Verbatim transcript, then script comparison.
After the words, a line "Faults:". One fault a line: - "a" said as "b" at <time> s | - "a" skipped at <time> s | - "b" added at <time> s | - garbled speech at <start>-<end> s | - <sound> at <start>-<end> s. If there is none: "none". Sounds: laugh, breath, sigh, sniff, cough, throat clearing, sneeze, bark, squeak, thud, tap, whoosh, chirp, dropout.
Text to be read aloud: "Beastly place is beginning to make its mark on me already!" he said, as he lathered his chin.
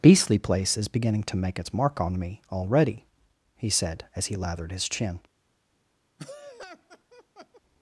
"Beastly place is beginning to make its mark on me already!" he said, as he lathered his chin.
Faults:
- laugh at 6.2-7.6 s